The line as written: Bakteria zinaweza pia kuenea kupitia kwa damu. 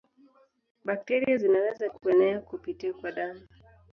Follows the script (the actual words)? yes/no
no